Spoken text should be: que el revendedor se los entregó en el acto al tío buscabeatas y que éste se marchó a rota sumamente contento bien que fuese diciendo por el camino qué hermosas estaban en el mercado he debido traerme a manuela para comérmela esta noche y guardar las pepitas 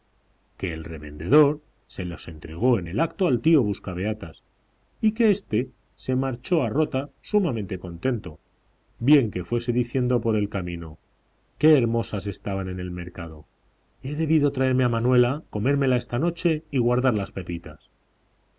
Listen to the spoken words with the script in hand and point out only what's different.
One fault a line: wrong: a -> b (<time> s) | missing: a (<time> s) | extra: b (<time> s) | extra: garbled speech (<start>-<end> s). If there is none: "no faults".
missing: para (15.4 s)